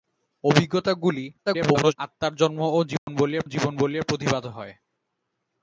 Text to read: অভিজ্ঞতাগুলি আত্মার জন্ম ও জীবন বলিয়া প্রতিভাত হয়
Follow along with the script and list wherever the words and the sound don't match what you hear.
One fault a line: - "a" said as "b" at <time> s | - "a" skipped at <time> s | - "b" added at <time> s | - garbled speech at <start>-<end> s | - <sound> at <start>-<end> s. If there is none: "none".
- garbled speech at 1.5-2.0 s
- dropout at 3.0-3.1 s
- "জীবন বলিয়া" added at 3.5 s